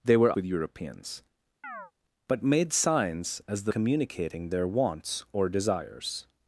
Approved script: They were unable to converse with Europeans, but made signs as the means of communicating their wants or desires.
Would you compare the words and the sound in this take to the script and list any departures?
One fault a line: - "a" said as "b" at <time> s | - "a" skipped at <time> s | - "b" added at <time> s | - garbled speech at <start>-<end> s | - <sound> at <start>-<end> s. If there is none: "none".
- "unable to converse" skipped at 0.3 s
- chirp at 1.6-1.9 s
- "means of" skipped at 3.7 s